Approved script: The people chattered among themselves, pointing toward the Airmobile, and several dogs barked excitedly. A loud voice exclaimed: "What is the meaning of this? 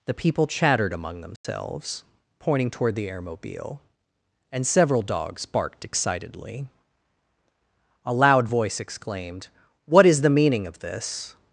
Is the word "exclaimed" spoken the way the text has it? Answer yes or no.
yes